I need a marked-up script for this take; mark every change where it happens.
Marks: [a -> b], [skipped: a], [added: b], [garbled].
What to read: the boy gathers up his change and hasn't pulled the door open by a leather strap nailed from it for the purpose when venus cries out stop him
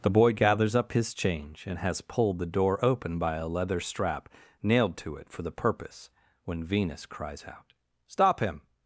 the boy gathers up his change and [hasn't -> has] pulled the door open by a leather strap nailed [from -> to] it for the purpose when venus cries out stop him